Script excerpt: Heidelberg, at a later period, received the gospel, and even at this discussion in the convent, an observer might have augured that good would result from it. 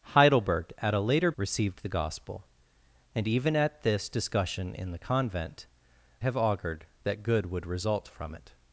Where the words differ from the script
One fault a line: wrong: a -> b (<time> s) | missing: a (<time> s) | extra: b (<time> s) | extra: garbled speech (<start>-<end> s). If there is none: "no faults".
missing: period (1.3 s)
missing: an observer might (5.7 s)